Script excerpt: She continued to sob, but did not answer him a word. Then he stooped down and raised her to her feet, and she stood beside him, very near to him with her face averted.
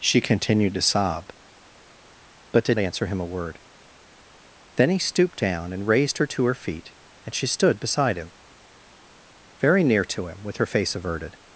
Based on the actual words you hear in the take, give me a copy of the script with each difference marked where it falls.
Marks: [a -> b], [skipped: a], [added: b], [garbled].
She continued to sob, but did [skipped: not] answer him a word. Then he stooped down and raised her to her feet, and she stood beside him, very near to him with her face averted.